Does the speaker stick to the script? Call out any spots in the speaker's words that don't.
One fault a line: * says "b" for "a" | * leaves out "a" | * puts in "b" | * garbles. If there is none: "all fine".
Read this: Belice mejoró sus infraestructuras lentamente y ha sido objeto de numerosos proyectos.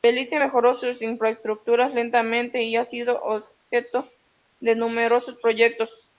all fine